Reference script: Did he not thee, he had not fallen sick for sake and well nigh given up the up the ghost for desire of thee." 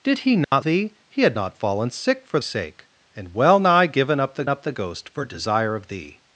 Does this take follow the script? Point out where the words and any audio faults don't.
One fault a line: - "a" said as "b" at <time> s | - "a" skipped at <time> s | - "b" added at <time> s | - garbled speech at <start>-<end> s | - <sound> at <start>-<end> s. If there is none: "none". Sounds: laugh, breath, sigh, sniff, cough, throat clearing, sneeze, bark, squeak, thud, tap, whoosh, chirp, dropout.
- dropout at 0.4-0.5 s